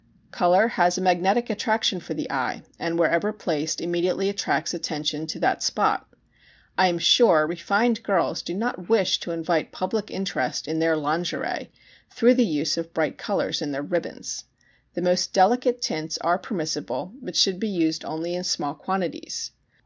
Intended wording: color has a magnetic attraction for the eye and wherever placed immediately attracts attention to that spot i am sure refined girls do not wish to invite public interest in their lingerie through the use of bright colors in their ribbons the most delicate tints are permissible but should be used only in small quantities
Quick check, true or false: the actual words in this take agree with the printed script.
true